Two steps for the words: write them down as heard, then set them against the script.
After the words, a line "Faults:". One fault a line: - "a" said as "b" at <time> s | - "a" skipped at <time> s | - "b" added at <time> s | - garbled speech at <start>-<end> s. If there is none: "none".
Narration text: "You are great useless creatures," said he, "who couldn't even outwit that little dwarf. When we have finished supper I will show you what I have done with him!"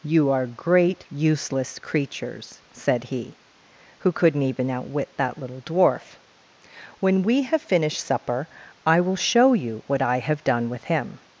"You are great useless creatures," said he, "who couldn't even outwit that little dwarf. When we have finished supper I will show you what I have done with him!"
Faults:
none